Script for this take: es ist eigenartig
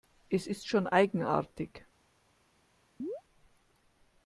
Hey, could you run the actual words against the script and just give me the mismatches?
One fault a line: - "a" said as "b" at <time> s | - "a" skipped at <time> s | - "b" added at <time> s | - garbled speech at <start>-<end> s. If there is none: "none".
- "schon" added at 0.7 s